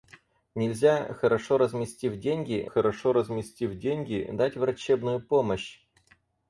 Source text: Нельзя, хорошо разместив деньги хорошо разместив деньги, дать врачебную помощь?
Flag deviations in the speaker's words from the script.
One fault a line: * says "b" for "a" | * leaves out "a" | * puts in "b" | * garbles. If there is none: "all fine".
all fine